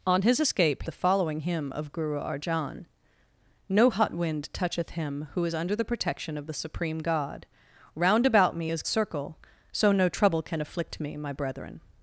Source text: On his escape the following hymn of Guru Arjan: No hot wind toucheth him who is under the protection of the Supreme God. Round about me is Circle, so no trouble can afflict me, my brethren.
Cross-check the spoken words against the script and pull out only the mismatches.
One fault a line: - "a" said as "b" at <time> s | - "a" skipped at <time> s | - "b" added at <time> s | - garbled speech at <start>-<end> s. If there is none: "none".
none